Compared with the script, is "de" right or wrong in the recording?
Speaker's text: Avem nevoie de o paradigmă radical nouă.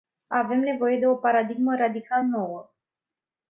right